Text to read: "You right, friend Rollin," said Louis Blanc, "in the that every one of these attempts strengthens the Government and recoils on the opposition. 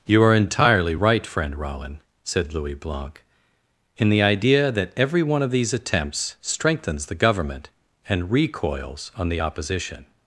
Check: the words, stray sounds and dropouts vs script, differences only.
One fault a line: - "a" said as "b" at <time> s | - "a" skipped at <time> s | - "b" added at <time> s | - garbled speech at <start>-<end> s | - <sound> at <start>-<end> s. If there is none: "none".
- "are entirely" added at 0.2 s
- "idea" added at 4.2 s